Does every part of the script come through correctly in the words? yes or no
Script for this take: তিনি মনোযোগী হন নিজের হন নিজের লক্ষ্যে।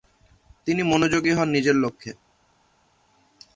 no